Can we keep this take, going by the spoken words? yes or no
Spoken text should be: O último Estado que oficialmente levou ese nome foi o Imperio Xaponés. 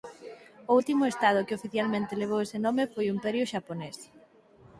yes